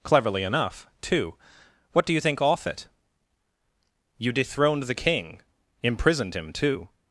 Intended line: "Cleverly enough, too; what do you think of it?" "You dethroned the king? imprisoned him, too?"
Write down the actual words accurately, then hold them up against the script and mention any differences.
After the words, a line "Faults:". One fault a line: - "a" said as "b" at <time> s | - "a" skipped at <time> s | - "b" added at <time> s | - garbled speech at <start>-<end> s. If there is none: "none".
"Cleverly enough, too; what do you think off it?" "You dethroned the king? imprisoned him, too?"
Faults:
- "of" said as "off" at 2.4 s